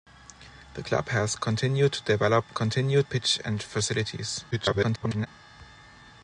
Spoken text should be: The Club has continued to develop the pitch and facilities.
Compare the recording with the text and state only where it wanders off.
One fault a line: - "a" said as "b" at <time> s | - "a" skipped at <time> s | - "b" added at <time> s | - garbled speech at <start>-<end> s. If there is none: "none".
- "the" said as "continued" at 2.5 s
- garbled speech at 4.5-5.3 s